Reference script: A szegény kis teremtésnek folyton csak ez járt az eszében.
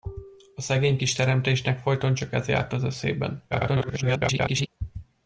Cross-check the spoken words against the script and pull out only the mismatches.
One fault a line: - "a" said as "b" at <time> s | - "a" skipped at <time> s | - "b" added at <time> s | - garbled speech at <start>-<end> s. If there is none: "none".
- garbled speech at 3.5-4.7 s